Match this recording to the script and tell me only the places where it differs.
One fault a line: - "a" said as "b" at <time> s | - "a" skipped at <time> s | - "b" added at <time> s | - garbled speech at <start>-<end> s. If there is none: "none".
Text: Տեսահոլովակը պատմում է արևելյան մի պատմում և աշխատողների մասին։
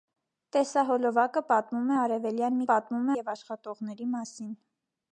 none